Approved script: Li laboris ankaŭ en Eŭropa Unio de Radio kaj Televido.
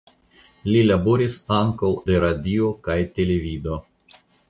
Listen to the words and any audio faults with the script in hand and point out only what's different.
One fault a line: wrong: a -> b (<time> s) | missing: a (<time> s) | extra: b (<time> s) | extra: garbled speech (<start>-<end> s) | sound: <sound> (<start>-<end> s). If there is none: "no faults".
missing: en Eŭropa Unio (1.9 s)